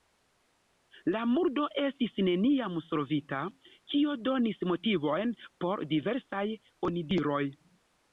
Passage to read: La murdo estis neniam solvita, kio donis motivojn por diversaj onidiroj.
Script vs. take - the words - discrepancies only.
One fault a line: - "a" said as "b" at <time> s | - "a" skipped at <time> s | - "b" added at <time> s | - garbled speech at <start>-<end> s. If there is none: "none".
none